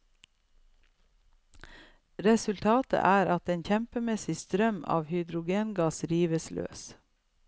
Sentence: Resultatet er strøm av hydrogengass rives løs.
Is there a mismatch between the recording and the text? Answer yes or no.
yes